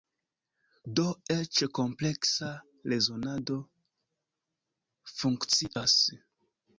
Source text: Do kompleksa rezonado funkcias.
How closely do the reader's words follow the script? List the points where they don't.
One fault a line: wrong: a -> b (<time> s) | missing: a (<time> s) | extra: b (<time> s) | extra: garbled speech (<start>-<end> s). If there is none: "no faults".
extra: eĉ (1.3 s)